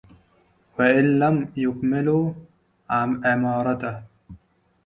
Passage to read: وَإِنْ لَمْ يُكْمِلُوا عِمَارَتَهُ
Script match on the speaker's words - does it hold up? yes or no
yes